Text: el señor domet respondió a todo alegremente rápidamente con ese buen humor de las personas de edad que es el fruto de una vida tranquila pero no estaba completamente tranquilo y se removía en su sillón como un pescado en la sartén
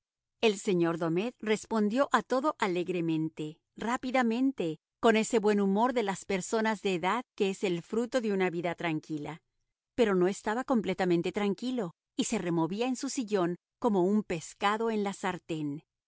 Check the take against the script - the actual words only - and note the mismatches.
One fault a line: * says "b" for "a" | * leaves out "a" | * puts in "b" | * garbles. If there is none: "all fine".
all fine